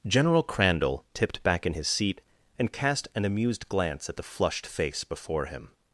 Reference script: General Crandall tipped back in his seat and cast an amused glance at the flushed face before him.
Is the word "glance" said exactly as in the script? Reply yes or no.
yes